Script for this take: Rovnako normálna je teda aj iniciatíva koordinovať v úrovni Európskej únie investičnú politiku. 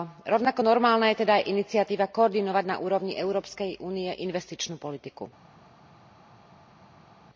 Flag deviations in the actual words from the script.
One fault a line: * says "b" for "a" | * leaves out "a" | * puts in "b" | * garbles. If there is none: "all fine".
* says "na" for "v"